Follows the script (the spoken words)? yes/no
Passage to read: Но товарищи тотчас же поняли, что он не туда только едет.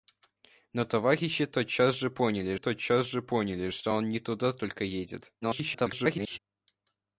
no